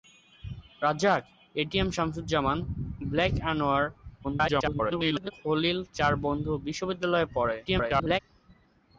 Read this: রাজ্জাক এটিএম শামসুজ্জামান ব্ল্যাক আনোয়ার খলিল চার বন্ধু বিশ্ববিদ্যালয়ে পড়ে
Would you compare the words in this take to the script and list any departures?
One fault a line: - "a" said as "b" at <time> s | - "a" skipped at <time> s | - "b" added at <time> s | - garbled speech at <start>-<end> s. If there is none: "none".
- garbled speech at 4.2-5.3 s
- garbled speech at 7.7-8.2 s